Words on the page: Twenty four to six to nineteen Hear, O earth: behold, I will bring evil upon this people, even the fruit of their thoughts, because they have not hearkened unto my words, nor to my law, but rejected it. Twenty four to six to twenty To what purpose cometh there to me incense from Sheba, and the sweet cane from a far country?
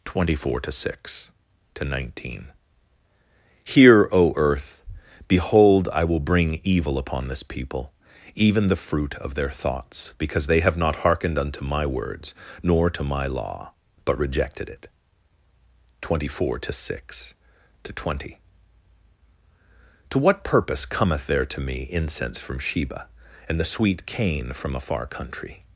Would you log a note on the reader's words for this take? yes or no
no